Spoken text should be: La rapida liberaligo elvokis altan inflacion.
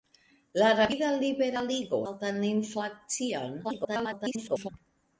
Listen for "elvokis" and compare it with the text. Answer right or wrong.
wrong